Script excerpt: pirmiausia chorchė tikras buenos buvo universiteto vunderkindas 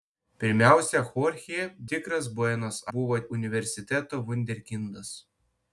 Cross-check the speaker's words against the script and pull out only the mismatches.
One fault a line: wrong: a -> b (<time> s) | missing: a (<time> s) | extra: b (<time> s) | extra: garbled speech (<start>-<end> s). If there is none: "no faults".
no faults